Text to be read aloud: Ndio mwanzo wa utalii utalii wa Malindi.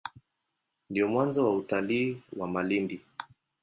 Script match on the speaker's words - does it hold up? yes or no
no